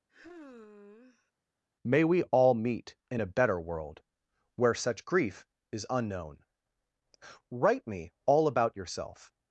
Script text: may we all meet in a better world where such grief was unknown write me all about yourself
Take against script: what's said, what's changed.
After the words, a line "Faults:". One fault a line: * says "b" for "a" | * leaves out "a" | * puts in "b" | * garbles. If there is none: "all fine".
may we all meet in a better world where such grief is unknown write me all about yourself
Faults:
* says "is" for "was"